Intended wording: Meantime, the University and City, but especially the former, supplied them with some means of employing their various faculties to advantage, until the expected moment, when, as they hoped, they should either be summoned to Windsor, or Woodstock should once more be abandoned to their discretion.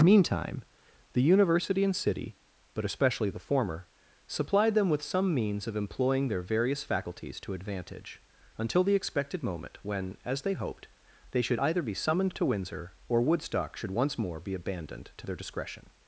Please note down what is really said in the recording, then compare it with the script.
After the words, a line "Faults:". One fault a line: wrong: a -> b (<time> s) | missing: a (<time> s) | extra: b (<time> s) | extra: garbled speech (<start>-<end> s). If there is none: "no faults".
Meantime, the University and City, but especially the former, supplied them with some means of employing their various faculties to advantage, until the expected moment, when, as they hoped, they should either be summoned to Windsor, or Woodstock should once more be abandoned to their discretion.
Faults:
no faults